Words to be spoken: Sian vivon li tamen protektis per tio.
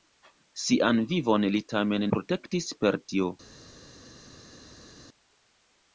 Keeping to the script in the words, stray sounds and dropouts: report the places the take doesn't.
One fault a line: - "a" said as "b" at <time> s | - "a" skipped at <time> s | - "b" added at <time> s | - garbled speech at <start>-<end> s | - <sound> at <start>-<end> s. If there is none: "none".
none